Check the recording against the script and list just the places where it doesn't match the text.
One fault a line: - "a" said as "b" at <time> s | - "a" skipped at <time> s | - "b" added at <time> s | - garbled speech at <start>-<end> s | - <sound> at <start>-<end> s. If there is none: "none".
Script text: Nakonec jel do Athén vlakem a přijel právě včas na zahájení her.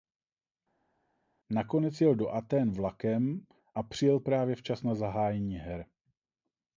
none